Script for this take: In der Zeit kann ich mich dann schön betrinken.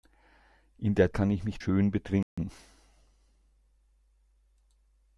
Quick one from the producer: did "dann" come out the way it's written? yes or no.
no